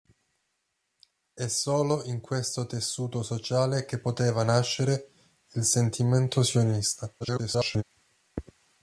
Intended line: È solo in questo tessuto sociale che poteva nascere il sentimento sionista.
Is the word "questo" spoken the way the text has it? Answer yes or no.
yes